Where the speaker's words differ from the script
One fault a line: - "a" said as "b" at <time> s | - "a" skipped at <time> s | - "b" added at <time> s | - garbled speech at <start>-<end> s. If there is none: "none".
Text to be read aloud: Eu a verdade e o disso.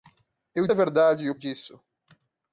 none